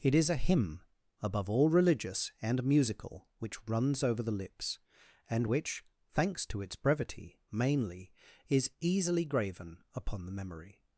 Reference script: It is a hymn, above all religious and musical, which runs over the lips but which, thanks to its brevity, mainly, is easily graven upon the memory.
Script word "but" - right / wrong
wrong